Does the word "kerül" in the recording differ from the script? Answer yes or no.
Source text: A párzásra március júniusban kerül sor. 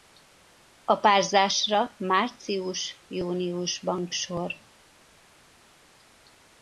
yes